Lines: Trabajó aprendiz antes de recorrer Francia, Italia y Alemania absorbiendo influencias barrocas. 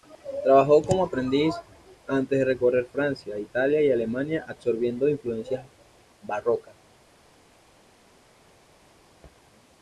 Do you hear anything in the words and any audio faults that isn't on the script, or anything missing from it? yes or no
yes